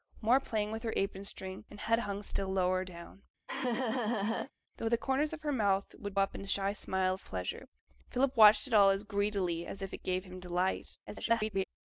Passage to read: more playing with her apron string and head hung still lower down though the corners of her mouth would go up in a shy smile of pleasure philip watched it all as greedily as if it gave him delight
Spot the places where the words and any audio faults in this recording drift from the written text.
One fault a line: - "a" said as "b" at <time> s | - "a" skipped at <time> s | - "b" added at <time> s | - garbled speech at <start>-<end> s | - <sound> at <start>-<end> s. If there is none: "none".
- laugh at 3.5-4.5 s
- "go" skipped at 6.2 s
- garbled speech at 11.1-11.6 s